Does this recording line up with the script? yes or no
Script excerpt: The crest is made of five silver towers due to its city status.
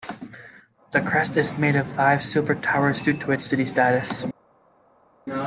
yes